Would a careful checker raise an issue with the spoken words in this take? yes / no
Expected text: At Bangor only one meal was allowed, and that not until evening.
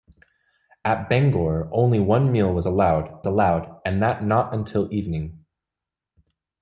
yes